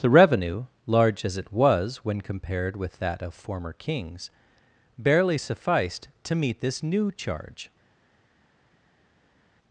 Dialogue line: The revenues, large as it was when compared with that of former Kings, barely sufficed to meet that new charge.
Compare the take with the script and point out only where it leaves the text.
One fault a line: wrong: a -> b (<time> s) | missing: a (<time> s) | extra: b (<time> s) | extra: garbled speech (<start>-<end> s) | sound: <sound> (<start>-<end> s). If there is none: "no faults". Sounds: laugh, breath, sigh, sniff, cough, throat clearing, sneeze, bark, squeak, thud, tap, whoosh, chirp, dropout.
wrong: revenues -> revenue (0.1 s)
wrong: that -> this (6.6 s)